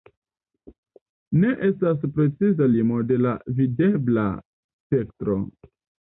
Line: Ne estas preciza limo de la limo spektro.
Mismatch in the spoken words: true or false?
true